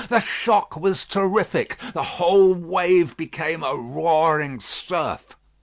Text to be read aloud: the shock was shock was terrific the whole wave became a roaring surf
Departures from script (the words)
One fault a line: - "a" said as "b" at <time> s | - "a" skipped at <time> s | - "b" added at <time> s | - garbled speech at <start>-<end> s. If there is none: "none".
- "shock was" skipped at 1.1 s